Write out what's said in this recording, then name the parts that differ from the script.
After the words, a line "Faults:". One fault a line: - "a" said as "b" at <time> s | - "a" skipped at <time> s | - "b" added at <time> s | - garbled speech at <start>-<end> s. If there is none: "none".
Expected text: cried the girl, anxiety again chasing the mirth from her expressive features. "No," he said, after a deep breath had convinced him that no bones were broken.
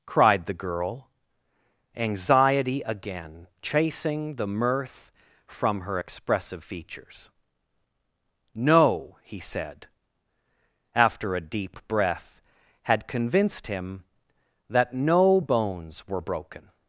cried the girl, anxiety again chasing the mirth from her expressive features. "No," he said, after a deep breath had convinced him that no bones were broken.
Faults:
none